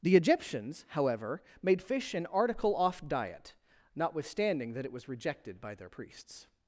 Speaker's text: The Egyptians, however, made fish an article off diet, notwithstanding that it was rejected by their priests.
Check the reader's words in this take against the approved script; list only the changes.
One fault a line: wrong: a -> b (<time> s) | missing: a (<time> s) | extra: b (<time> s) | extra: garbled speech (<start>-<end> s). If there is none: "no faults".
no faults